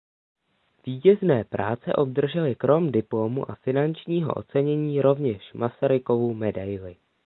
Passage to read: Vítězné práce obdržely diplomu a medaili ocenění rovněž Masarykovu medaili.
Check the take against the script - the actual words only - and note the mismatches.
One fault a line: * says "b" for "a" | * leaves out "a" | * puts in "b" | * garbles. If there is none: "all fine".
* puts in "krom"
* says "finančního" for "medaili"